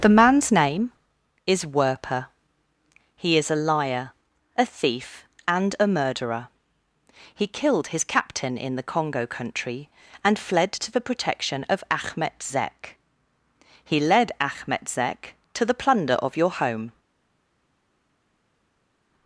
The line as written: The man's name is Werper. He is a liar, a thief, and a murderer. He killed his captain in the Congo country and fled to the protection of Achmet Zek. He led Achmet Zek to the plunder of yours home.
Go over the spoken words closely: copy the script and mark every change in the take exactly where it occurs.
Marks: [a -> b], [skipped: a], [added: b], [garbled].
The man's name is Werper. He is a liar, a thief, and a murderer. He killed his captain in the Congo country and fled to the protection of Achmet Zek. He led Achmet Zek to the plunder of [yours -> your] home.